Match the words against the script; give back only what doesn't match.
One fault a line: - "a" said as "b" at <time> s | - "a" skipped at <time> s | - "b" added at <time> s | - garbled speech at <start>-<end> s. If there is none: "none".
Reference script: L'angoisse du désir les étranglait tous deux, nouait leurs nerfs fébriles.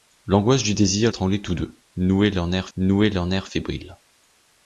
- "les" skipped at 1.1 s
- "nouait leurs nerfs" added at 2.8 s